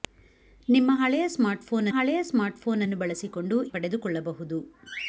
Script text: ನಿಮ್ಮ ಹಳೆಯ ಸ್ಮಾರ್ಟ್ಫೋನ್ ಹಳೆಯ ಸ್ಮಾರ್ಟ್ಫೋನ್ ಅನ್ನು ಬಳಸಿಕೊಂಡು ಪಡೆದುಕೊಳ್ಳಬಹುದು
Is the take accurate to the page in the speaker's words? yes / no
yes